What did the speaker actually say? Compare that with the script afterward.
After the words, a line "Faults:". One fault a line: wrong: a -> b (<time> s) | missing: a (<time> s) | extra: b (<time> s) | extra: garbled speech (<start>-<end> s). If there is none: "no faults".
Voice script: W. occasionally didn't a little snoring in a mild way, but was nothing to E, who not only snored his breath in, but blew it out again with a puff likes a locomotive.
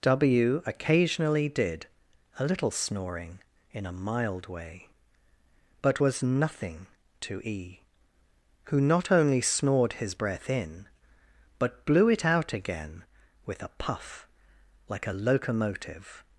W. occasionally did a little snoring in a mild way, but was nothing to E, who not only snored his breath in, but blew it out again with a puff like a locomotive.
Faults:
wrong: didn't -> did (1.5 s)
wrong: likes -> like (14.9 s)